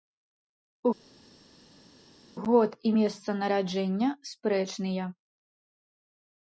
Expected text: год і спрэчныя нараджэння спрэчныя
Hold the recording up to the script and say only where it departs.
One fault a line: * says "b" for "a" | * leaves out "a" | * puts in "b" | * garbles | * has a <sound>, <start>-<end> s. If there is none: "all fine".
* says "месца" for "спрэчныя"